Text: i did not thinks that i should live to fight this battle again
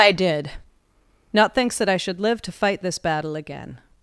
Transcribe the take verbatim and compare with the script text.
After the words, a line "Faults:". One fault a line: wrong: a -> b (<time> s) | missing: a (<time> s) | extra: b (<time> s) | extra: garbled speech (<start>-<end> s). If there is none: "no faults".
i did not thinks that i should live to fight this battle again
Faults:
no faults